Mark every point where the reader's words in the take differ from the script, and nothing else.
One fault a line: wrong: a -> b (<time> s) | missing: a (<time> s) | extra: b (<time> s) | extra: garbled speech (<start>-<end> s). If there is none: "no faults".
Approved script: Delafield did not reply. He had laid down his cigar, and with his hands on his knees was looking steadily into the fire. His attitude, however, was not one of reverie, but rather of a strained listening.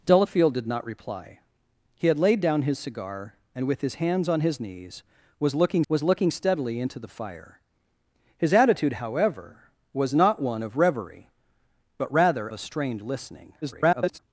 extra: was looking (5.9 s)
missing: of (12.5 s)
extra: garbled speech (13.6-14.2 s)